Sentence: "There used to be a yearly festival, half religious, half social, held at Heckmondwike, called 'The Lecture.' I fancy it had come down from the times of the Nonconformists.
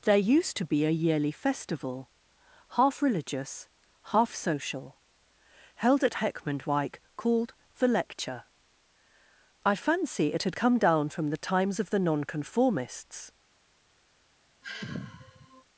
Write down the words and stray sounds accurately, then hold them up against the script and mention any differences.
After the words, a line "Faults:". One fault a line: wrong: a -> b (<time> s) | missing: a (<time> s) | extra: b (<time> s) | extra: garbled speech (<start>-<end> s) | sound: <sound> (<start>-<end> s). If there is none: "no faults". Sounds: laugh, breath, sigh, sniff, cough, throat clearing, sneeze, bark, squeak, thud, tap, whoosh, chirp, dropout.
"There used to be a yearly festival, half religious, half social, held at Heckmondwike, called 'The Lecture.' I fancy it had come down from the times of the Nonconformists.
Faults:
sound: sigh (14.6-15.6 s)